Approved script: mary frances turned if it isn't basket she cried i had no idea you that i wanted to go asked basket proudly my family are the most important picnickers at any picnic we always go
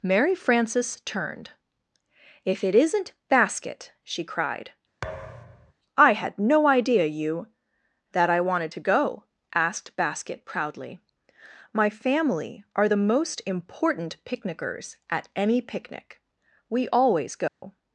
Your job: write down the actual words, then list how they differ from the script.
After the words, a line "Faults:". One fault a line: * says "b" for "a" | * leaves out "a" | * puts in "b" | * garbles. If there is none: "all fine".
mary frances turned if it isn't basket she cried i had no idea you that i wanted to go asked basket proudly my family are the most important picnickers at any picnic we always go
Faults:
all fine